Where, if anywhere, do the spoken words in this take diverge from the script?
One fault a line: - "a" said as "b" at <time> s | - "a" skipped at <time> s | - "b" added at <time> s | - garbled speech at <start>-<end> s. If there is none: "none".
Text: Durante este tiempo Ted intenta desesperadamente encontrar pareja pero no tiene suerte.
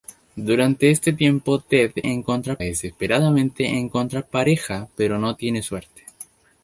- "intenta" said as "encontrar" at 2.1 s